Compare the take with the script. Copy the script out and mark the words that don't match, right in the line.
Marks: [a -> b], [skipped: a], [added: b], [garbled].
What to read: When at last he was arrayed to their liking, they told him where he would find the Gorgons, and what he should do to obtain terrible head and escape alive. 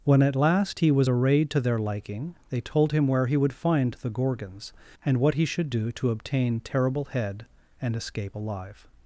When at last he was arrayed to their liking, they told him where he would find the Gorgons, and what he should do to obtain terrible head and escape alive.